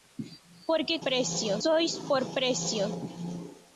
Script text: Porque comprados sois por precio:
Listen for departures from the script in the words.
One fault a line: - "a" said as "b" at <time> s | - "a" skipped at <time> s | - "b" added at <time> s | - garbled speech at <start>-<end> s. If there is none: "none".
- "comprados" said as "precio" at 1.1 s